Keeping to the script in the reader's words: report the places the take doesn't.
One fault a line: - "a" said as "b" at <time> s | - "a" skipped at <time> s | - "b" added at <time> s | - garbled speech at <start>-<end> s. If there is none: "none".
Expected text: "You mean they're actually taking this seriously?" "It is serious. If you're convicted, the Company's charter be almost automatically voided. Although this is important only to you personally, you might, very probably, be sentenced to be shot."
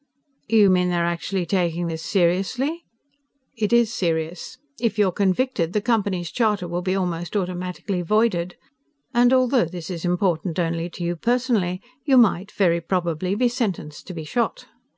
- "will" added at 6.7 s
- "And" added at 9.1 s